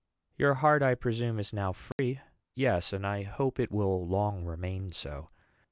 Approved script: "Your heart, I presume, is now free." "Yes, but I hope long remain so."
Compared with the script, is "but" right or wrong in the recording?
wrong